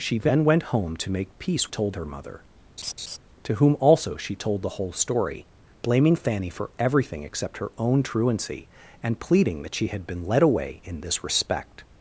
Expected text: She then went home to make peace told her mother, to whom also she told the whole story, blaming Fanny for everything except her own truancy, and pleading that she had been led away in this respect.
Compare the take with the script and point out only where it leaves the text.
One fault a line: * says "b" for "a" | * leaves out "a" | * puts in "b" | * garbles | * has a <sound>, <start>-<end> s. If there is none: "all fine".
* has a laugh, 2.8-3.2 s